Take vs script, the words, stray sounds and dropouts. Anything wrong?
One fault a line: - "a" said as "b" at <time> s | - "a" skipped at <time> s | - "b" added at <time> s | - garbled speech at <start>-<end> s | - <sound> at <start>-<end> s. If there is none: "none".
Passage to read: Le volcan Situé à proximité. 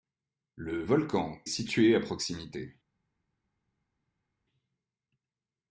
none